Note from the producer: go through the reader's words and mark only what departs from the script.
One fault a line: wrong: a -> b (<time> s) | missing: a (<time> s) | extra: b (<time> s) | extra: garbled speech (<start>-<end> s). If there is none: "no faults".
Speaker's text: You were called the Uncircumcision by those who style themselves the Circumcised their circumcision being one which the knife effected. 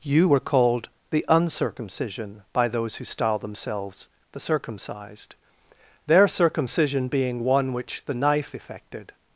no faults